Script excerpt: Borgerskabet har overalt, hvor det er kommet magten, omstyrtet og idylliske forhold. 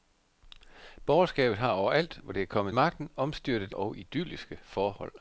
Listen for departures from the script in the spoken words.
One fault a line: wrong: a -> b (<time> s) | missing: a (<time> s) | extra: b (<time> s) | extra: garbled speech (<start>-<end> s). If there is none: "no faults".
no faults